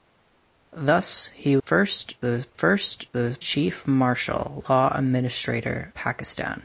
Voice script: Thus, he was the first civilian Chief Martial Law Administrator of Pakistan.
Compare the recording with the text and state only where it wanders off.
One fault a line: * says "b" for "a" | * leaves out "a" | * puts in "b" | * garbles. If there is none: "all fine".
* says "first" for "was"
* says "the" for "civilian"
* leaves out "of"